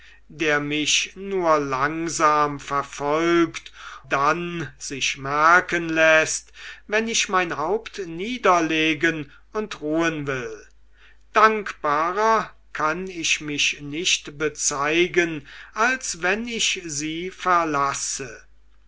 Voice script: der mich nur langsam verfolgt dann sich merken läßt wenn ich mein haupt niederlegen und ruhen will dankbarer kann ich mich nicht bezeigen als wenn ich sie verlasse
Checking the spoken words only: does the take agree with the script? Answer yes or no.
yes